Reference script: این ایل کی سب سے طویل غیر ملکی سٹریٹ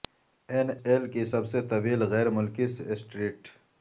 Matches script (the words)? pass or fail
pass